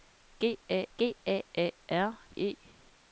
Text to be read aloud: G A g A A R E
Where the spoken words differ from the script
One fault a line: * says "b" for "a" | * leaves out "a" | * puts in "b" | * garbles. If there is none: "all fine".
all fine